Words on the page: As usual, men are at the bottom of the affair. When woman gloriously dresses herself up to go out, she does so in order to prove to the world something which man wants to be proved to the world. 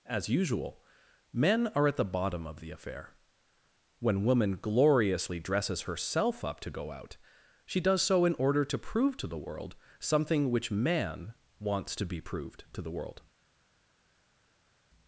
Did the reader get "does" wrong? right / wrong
right